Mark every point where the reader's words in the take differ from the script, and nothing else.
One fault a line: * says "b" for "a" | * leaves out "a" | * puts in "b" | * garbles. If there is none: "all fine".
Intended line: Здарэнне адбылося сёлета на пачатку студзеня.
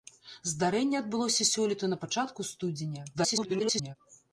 * garbles